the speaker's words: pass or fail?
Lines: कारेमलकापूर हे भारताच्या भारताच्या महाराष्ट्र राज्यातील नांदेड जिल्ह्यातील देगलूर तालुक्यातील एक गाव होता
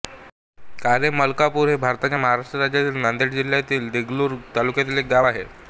fail